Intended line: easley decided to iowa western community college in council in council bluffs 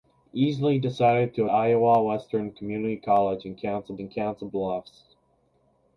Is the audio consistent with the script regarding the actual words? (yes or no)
yes